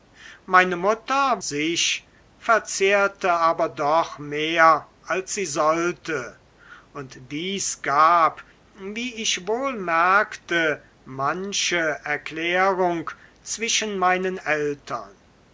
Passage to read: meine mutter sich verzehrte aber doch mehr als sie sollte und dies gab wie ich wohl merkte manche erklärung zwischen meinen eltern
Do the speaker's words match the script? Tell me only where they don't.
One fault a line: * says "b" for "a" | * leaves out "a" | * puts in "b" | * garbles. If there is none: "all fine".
all fine